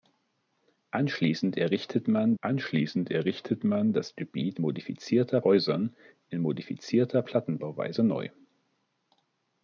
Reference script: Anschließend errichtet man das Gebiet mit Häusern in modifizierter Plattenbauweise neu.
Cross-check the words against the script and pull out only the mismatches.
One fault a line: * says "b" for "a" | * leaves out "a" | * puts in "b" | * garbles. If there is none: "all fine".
* puts in "anschließend errichtet man"
* says "modifizierter" for "mit"